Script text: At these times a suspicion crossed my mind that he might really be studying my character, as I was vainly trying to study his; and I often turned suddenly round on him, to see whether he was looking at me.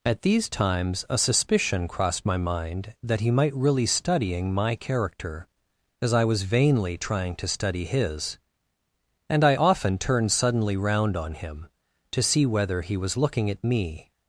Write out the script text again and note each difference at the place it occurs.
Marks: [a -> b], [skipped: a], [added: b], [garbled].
At these times a suspicion crossed my mind that he might really [skipped: be] studying my character, as I was vainly trying to study his; and I often turned suddenly round on him, to see whether he was looking at me.